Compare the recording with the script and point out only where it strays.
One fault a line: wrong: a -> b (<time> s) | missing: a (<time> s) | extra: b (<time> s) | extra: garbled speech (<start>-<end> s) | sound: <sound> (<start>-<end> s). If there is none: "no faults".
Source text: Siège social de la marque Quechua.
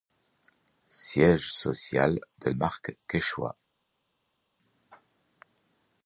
missing: la (2.5 s)